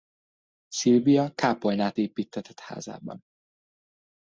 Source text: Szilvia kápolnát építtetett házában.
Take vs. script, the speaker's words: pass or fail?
pass